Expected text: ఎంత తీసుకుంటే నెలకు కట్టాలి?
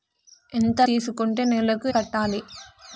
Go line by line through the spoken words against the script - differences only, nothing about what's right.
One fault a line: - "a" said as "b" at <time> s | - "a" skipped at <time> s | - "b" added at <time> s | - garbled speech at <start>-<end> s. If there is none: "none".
none